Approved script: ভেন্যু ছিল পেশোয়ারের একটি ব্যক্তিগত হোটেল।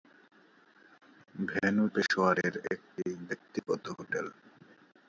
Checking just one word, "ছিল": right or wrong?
wrong